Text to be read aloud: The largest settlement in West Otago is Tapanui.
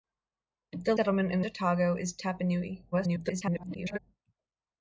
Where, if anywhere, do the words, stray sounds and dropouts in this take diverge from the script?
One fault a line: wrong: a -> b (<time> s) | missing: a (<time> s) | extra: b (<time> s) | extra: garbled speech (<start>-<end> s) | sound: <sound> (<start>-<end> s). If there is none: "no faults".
missing: largest (0.9 s)
missing: West (1.5 s)
extra: garbled speech (2.9-4.0 s)